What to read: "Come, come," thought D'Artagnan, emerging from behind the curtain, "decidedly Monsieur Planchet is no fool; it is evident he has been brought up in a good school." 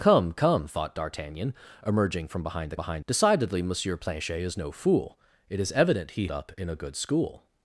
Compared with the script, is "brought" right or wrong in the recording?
wrong